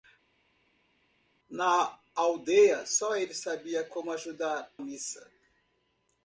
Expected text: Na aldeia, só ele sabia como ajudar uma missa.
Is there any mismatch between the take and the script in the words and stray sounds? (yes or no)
yes